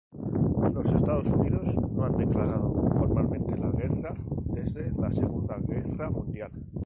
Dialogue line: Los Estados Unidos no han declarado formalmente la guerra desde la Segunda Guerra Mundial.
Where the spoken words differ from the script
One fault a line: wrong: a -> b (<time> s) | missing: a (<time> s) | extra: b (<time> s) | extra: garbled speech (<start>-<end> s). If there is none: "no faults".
no faults